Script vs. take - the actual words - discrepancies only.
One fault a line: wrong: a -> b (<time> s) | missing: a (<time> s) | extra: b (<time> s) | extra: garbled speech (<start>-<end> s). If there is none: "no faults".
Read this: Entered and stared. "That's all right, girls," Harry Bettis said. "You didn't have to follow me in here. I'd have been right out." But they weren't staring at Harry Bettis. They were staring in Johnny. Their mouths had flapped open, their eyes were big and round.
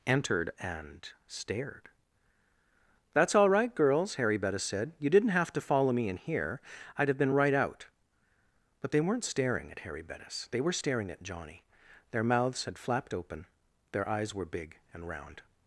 wrong: in -> at (11.1 s)